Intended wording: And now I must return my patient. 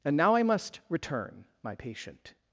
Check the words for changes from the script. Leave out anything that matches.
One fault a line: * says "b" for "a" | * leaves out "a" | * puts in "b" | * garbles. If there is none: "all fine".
all fine